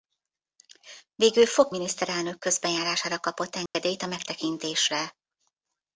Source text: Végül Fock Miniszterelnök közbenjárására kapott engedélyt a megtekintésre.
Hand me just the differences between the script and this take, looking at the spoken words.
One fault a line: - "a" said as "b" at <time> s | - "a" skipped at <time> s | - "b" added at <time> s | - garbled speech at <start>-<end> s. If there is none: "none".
none